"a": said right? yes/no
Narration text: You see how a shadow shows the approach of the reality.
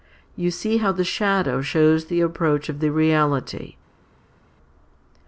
no